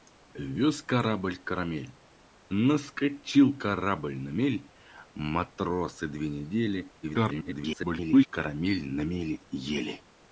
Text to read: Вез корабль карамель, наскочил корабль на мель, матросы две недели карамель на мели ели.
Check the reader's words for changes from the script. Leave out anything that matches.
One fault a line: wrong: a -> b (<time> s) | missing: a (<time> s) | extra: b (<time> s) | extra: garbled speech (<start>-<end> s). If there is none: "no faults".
extra: garbled speech (7.0-8.3 s)